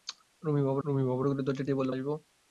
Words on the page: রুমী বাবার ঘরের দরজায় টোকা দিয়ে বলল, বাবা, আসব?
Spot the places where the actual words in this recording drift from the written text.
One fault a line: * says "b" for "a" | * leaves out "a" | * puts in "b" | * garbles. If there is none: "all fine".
* puts in "রুমী বাবার"
* leaves out "টোকা"
* leaves out "বাবা"